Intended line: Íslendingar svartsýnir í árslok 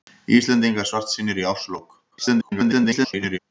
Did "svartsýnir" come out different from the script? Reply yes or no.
no